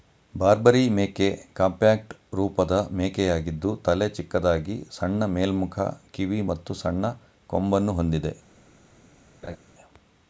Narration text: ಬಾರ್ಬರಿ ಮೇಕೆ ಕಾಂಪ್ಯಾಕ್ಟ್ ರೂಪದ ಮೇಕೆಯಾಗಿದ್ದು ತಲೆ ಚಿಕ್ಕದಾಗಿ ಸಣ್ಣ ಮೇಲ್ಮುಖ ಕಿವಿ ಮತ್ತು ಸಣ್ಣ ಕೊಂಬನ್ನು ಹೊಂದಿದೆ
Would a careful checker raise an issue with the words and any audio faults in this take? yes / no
yes